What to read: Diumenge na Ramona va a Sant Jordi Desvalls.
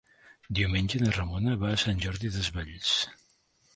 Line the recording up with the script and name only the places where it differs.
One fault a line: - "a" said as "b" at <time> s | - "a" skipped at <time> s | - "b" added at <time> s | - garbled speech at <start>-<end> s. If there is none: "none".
none